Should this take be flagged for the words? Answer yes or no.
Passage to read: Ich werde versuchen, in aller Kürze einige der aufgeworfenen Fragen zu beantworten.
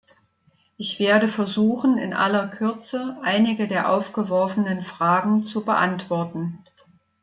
no